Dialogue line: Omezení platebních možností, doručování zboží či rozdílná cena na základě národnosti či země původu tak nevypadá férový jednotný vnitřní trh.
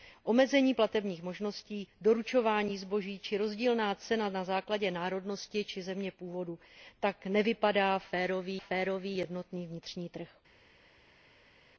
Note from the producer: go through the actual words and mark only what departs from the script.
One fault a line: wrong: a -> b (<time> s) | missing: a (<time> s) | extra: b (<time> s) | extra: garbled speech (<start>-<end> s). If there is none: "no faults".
extra: férový (8.6 s)